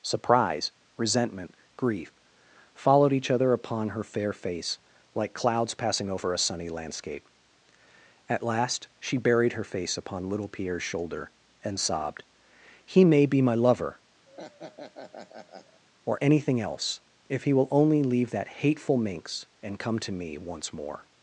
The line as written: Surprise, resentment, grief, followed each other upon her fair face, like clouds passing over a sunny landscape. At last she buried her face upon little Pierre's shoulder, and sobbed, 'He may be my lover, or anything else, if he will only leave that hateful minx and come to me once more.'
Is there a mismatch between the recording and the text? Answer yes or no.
no